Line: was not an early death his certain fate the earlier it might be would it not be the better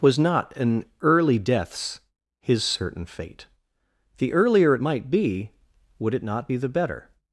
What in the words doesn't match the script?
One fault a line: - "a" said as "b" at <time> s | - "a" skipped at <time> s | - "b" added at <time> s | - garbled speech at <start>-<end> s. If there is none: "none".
- "death" said as "deaths" at 1.4 s